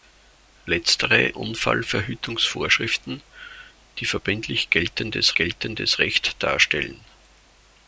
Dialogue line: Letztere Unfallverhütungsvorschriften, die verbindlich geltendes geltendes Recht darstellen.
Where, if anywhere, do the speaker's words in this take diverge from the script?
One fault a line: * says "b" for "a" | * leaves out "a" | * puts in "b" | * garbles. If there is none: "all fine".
all fine